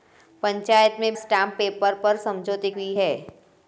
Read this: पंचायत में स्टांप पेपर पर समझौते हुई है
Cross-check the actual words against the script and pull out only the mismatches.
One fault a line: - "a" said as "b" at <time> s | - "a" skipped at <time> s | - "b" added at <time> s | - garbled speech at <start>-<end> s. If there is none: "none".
none